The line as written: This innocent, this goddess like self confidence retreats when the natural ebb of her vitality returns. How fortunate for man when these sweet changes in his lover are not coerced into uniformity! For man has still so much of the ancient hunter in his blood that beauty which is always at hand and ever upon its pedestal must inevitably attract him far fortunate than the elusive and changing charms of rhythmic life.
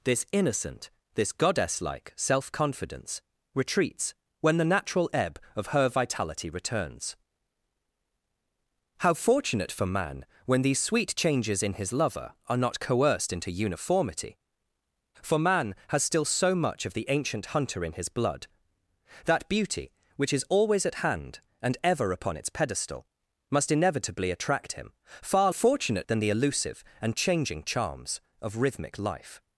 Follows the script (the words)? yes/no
yes